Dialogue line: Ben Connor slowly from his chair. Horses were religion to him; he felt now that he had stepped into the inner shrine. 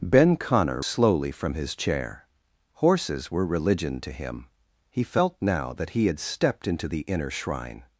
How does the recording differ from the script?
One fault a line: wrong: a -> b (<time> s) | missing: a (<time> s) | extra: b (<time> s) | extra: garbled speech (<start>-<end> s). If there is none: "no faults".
no faults